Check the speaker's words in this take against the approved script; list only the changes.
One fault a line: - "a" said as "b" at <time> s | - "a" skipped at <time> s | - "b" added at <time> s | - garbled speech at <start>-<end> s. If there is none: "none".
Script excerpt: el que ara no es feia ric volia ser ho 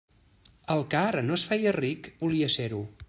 none